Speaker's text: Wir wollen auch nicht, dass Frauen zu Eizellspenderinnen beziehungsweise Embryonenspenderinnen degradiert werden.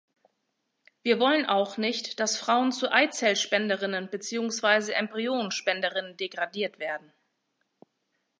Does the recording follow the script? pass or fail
pass